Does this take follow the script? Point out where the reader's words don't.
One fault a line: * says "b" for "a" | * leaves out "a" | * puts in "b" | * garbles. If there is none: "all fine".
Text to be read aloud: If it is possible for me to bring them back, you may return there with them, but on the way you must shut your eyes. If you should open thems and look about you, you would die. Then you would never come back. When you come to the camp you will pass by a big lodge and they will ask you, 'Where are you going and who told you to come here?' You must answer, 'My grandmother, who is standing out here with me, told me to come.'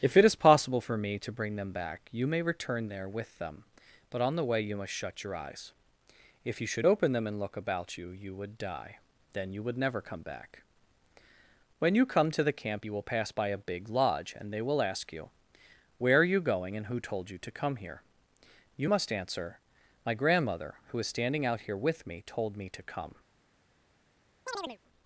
* says "them" for "thems"